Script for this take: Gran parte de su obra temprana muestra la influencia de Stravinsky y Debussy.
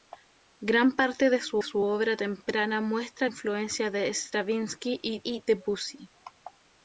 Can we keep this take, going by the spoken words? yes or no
no